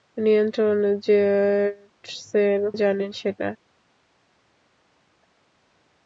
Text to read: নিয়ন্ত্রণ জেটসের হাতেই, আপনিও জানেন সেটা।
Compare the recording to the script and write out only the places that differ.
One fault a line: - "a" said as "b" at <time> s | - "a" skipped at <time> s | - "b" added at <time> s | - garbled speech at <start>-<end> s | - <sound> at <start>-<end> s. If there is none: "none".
- "হাতেই আপনিও" skipped at 2.6 s